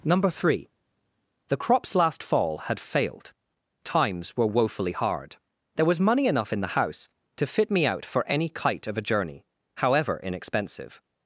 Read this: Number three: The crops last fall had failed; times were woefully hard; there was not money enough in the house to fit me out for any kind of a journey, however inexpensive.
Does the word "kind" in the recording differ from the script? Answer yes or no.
yes